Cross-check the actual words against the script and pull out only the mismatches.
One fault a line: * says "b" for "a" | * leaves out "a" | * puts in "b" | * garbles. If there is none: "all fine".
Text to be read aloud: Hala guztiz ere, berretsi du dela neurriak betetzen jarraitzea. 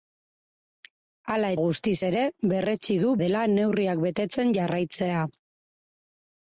all fine